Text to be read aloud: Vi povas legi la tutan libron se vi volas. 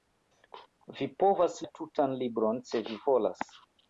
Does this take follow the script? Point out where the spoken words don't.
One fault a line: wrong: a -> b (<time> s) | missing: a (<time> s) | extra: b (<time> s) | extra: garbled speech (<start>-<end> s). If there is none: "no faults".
missing: legi (1.6 s)